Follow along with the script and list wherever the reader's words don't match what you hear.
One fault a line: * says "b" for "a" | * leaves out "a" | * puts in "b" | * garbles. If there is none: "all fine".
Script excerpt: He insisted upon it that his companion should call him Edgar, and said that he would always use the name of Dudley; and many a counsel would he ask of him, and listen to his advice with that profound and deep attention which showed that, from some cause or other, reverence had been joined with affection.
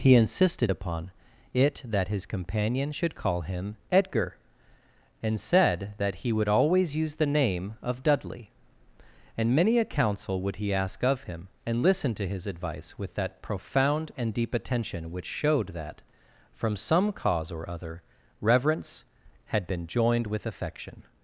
all fine